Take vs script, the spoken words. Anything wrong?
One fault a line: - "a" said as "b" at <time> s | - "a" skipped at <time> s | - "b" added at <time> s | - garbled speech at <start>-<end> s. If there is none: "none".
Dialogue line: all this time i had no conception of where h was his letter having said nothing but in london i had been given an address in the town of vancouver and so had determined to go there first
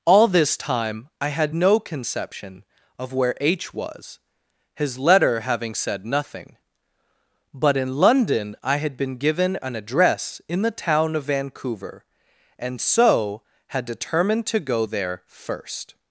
none